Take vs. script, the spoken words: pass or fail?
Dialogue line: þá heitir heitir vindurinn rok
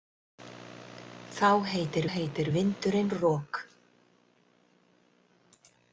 pass